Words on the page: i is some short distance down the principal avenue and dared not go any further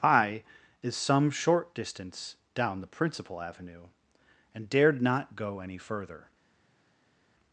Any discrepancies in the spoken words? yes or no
no